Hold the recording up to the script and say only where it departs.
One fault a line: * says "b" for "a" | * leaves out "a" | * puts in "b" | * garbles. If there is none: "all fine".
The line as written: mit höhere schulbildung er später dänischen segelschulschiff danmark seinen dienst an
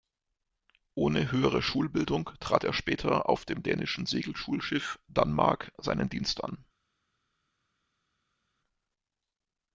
* says "ohne" for "mit"
* puts in "trat"
* puts in "auf dem"